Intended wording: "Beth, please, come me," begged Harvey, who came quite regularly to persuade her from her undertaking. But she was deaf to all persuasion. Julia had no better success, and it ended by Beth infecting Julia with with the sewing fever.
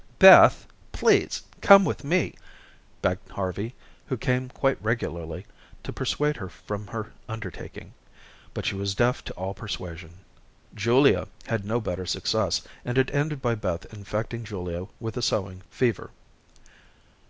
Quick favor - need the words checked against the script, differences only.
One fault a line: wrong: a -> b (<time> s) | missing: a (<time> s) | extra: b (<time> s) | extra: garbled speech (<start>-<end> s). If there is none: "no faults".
extra: with (1.9 s)
missing: with (15.2 s)